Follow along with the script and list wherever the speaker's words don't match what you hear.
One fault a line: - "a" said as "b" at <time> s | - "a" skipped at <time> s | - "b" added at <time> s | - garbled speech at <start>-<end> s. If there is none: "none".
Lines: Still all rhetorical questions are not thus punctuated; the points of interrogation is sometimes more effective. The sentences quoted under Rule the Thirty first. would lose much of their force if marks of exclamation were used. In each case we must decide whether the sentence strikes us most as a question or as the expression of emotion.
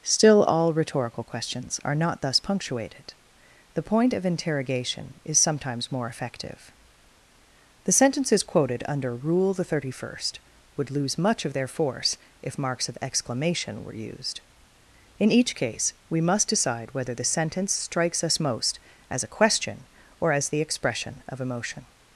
- "points" said as "point" at 3.8 s